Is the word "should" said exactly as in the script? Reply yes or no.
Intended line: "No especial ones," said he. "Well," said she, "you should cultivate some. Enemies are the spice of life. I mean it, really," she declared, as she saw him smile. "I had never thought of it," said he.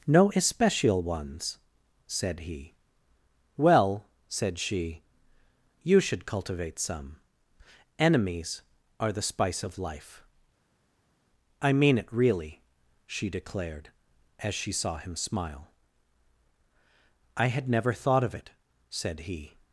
yes